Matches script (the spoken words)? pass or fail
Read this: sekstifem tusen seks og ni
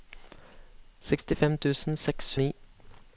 pass